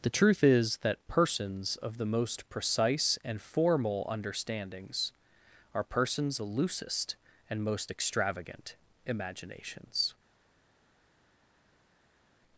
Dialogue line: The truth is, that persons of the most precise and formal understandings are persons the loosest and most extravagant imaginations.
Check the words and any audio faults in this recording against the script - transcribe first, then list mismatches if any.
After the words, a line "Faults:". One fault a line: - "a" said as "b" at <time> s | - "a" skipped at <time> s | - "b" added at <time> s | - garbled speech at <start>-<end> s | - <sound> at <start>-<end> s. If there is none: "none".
The truth is, that persons of the most precise and formal understandings are persons the loosest and most extravagant imaginations.
Faults:
none